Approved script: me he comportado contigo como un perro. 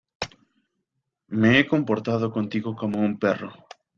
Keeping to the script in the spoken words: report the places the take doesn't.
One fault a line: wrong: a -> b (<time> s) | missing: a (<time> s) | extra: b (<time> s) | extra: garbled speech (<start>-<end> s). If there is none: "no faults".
no faults